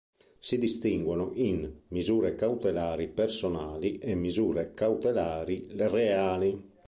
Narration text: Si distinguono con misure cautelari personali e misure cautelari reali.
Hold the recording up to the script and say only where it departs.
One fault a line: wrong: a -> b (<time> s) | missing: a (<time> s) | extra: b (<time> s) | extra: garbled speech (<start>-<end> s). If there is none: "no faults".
wrong: con -> in (1.4 s)